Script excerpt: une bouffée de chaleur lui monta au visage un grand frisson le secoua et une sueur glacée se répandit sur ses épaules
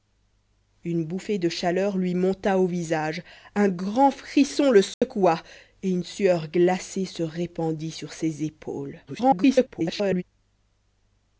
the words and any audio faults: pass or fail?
fail